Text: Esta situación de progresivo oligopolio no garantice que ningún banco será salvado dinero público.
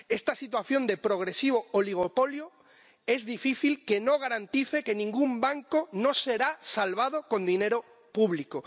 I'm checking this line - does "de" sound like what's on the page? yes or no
yes